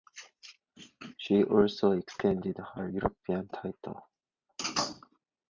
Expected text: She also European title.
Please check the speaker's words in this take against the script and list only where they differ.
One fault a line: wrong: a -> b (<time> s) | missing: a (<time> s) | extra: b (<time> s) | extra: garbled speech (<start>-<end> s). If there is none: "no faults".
extra: extended her (1.9 s)